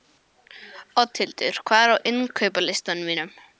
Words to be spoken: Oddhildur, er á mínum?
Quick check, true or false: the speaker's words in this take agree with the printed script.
false